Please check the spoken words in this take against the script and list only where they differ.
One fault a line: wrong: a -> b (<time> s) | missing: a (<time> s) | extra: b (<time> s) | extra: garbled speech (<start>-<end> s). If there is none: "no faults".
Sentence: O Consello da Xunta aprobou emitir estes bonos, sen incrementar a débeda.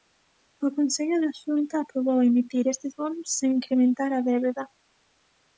no faults